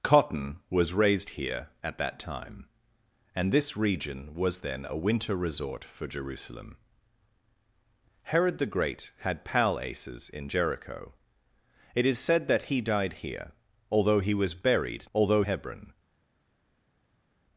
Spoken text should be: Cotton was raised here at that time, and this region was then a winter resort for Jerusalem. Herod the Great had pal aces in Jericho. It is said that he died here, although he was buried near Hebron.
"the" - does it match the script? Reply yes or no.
yes